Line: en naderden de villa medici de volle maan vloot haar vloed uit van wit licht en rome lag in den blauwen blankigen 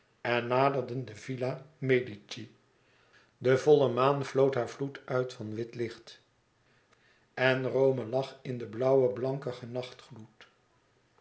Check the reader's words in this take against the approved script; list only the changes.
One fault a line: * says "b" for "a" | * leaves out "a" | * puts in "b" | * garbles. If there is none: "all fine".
all fine